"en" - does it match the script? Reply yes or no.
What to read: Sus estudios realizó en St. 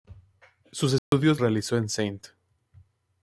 yes